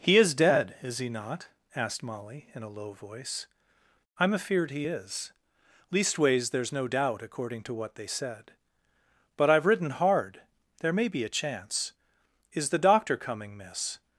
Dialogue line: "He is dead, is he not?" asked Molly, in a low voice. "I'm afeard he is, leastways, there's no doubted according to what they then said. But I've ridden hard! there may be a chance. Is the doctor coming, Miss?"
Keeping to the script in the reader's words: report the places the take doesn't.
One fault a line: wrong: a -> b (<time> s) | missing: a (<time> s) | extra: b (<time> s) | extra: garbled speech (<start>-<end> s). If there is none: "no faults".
wrong: doubted -> doubt (6.8 s)
missing: then (8.1 s)